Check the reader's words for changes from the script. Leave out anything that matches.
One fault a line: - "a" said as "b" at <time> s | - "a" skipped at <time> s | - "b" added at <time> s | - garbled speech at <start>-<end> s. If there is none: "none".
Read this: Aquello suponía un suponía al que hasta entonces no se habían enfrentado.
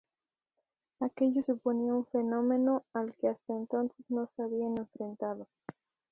- "suponía" said as "fenómeno" at 2.1 s